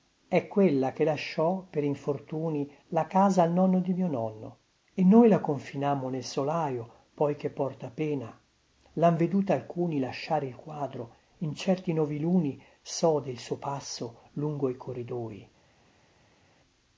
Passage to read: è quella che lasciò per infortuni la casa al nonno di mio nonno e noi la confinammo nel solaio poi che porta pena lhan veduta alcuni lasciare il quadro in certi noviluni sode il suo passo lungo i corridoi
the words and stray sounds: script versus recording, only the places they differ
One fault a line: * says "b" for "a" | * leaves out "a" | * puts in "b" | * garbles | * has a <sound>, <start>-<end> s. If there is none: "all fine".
all fine